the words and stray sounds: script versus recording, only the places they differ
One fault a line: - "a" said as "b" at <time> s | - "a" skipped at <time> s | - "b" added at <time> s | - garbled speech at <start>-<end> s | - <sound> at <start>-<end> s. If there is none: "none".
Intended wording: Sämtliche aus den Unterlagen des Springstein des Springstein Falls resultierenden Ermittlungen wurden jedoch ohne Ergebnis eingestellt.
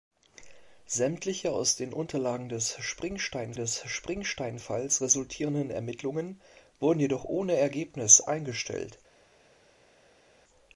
none